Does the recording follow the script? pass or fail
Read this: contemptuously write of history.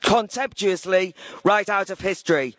fail